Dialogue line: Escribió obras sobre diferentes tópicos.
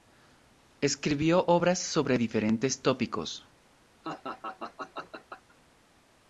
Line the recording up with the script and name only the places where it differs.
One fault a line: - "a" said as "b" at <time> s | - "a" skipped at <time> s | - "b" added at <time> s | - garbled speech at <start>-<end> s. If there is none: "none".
none